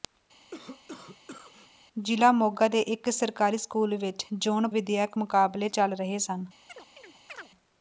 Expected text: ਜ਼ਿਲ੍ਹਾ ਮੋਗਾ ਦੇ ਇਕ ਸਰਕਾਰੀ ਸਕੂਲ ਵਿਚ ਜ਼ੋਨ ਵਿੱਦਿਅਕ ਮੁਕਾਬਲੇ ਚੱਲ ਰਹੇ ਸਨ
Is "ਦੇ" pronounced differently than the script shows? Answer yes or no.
no